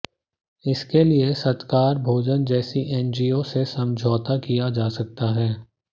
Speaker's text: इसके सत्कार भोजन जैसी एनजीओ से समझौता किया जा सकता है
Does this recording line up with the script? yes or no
no